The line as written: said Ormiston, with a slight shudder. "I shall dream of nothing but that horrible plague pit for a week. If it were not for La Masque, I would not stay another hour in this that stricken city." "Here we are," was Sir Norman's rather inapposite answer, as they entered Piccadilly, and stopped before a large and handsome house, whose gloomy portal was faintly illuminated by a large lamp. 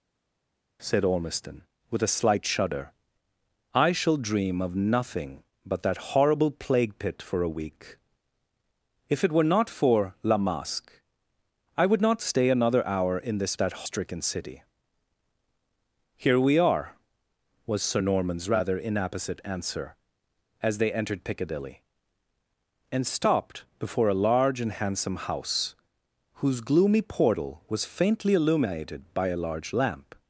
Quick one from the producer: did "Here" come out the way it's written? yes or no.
yes